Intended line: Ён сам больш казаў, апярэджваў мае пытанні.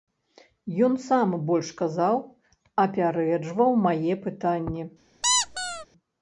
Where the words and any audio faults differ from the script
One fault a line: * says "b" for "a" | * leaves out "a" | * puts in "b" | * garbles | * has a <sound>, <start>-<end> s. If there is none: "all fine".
* has a squeak, 5.2-5.9 s